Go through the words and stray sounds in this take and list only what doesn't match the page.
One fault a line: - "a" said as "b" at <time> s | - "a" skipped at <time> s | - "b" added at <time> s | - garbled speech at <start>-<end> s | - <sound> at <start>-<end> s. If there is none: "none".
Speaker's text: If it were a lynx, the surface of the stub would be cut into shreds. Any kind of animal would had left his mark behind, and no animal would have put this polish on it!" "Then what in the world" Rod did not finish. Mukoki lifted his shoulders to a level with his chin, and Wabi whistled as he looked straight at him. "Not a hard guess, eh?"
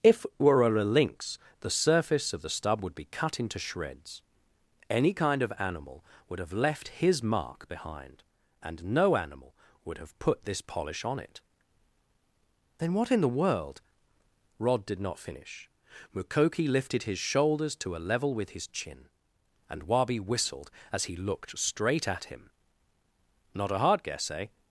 - "had" said as "have" at 6.4 s